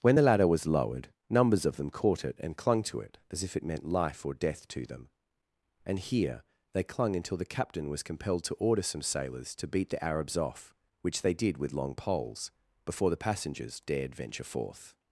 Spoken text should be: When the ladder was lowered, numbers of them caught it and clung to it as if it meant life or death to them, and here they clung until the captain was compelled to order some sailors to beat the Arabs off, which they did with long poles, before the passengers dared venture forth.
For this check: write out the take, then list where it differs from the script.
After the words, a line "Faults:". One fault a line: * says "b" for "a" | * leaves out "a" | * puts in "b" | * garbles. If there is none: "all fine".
When the ladder was lowered, numbers of them caught it and clung to it as if it meant life or death to them, and here they clung until the captain was compelled to order some sailors to beat the Arabs off, which they did with long poles, before the passengers dared venture forth.
Faults:
all fine